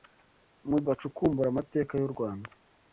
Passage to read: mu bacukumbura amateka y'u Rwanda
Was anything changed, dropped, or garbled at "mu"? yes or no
no